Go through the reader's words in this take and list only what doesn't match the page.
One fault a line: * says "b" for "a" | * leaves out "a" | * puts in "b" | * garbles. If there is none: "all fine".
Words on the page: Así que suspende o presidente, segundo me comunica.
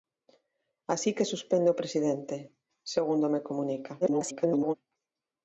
* garbles